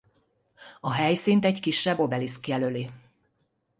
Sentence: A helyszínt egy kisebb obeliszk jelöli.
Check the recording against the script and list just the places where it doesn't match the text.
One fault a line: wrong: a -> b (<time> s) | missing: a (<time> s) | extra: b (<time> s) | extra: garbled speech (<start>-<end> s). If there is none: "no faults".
no faults